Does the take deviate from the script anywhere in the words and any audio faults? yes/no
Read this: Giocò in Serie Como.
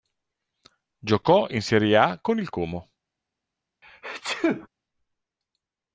yes